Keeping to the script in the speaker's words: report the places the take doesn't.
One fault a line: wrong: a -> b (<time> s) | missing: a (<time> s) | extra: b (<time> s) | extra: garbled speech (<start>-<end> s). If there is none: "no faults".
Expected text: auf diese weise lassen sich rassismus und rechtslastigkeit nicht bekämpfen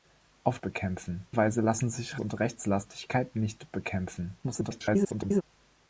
wrong: diese -> bekämpfen (0.6 s)
missing: rassismus (2.2 s)
extra: garbled speech (4.4-5.4 s)